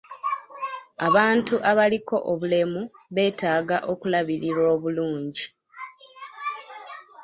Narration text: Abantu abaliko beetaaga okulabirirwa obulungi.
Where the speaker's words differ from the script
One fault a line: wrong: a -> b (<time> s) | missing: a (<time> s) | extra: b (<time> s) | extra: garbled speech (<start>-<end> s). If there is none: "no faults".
extra: obulemu (2.3 s)